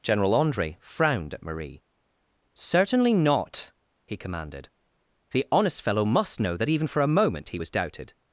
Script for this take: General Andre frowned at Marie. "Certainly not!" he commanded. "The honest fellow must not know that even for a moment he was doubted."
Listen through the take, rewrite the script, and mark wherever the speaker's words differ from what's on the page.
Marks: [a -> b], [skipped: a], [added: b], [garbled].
General Andre frowned at Marie. "Certainly not!" he commanded. "The honest fellow must [skipped: not] know that even for a moment he was doubted."